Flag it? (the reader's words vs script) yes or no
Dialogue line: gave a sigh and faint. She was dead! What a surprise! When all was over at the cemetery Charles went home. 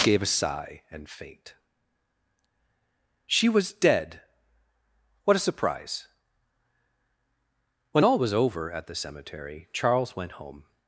no